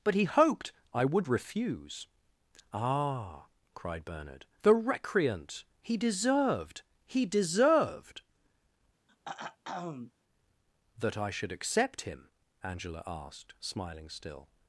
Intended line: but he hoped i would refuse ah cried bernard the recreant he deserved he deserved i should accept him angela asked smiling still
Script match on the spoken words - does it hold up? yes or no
no